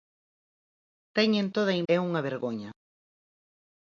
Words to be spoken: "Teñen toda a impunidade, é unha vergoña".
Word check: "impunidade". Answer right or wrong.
wrong